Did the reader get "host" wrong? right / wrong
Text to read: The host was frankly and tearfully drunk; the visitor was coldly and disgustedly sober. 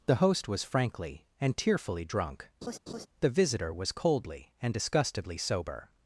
right